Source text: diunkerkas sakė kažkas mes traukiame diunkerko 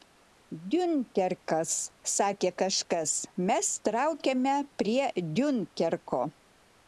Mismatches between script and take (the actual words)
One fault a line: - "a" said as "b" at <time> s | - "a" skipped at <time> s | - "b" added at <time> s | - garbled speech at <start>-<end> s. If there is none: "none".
- "prie" added at 4.8 s